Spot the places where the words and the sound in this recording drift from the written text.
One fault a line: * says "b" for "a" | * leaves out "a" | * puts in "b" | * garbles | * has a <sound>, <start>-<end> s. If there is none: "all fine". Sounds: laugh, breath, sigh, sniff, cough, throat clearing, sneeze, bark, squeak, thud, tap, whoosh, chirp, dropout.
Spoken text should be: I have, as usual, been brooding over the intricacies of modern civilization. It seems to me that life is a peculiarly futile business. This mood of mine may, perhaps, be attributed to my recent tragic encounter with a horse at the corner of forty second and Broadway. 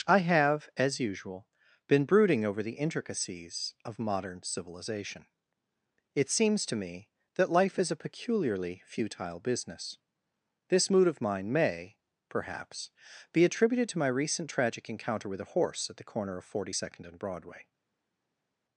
all fine